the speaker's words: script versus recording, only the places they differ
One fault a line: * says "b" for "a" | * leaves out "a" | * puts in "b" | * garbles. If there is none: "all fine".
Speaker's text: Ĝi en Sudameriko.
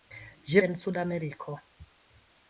all fine